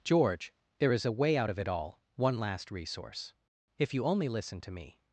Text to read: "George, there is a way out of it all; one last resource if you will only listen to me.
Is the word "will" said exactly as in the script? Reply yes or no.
no